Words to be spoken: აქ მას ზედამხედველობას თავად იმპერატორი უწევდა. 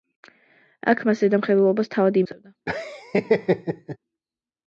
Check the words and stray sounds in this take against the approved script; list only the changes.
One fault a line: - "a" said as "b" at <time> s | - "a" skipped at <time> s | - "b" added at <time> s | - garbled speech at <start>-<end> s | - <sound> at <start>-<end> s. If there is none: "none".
- "იმპერატორი" skipped at 2.2 s
- laugh at 2.7-4.0 s